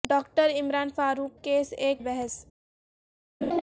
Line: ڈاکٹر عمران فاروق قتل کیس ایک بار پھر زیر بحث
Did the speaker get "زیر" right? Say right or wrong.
wrong